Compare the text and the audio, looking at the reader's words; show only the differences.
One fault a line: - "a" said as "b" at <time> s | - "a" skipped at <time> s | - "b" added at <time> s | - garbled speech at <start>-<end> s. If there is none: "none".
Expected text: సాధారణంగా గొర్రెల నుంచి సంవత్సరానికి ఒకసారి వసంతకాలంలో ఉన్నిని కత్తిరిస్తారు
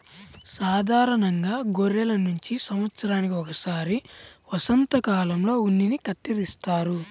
none